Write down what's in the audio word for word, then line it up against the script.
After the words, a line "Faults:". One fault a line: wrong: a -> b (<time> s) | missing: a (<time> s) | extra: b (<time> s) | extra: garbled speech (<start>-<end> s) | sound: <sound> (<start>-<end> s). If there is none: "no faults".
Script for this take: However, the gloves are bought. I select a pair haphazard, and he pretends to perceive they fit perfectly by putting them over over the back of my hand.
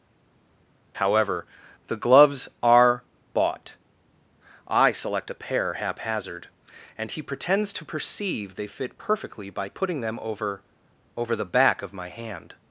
However, the gloves are bought. I select a pair haphazard, and he pretends to perceive they fit perfectly by putting them over over the back of my hand.
Faults:
no faults